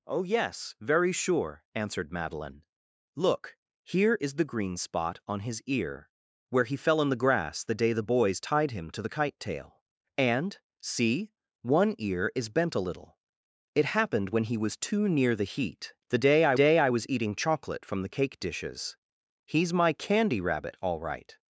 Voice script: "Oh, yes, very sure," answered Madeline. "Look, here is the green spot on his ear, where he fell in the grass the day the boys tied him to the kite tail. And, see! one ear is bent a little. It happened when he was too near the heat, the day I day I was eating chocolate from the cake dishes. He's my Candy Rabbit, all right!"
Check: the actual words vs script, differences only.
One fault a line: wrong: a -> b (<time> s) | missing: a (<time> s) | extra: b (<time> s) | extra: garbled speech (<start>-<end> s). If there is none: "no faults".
no faults